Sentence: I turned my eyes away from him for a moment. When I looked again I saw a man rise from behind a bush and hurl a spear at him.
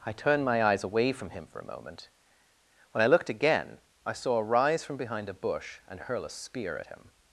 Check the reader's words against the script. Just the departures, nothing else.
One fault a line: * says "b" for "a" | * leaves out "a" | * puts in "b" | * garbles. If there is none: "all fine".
* leaves out "man"